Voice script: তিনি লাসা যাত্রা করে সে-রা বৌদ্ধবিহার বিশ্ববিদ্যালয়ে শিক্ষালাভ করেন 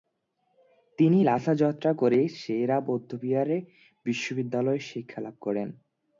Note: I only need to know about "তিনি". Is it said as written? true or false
true